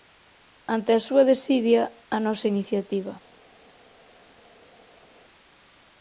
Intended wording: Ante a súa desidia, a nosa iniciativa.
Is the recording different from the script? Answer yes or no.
no